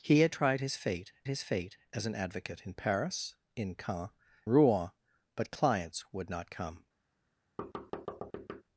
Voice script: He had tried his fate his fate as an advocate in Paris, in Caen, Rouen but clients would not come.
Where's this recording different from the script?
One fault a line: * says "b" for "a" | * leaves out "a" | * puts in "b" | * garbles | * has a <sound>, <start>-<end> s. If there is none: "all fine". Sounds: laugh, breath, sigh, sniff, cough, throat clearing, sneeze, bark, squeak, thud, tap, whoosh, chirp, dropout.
* has a thud, 7.6-8.6 s